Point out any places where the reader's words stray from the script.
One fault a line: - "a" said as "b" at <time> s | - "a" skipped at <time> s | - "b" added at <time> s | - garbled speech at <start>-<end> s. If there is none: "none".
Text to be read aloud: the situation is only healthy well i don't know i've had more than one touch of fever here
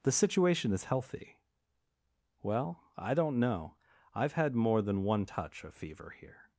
- "only" skipped at 0.8 s